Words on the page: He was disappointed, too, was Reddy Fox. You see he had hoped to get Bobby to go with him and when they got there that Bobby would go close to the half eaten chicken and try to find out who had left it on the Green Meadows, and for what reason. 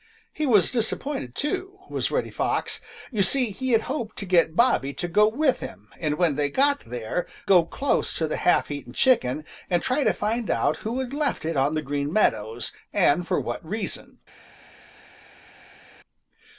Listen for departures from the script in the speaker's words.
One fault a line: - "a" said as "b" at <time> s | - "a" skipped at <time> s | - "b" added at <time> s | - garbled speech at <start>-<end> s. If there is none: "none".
- "that Bobby would" skipped at 7.3 s